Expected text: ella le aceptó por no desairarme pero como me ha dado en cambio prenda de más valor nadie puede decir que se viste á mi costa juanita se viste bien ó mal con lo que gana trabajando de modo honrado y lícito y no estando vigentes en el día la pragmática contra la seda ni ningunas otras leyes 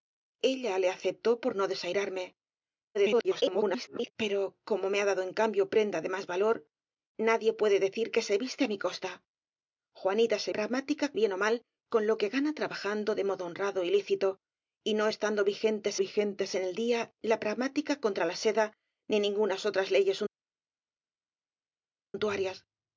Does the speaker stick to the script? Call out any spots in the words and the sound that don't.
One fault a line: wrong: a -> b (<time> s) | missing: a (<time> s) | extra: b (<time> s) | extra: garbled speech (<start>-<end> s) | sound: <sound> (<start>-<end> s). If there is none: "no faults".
extra: garbled speech (2.9-4.1 s)
wrong: viste -> pragmática (10.6 s)
extra: vigentes (16.0 s)